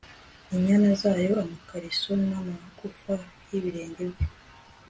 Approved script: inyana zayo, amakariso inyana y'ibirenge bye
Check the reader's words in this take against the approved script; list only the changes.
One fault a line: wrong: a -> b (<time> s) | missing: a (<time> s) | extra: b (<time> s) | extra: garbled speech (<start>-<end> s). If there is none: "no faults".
wrong: inyana -> n'amagufa (2.3 s)